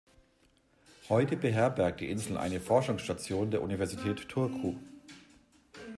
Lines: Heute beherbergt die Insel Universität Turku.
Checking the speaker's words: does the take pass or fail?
fail